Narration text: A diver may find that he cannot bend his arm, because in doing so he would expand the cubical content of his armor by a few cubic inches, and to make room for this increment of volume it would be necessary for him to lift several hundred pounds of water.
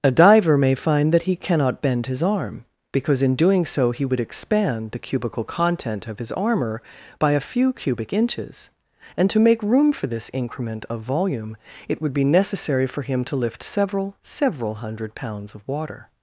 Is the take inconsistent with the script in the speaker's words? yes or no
yes